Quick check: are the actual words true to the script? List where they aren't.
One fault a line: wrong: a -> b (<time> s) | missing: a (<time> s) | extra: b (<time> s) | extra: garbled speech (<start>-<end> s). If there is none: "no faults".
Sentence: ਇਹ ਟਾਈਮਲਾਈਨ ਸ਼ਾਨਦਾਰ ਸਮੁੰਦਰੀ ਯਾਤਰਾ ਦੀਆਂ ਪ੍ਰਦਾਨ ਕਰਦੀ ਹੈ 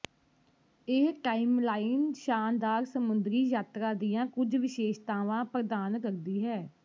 extra: ਕੁਝ ਵਿਸ਼ੇਸ਼ਤਾਵਾਂ (4.3 s)